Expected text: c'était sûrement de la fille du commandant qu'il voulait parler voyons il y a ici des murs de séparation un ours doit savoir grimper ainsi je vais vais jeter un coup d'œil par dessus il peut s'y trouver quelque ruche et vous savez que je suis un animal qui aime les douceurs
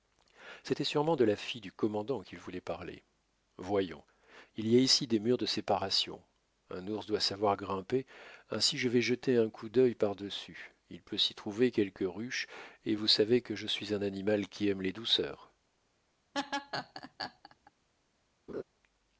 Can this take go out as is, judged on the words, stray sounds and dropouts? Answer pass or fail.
fail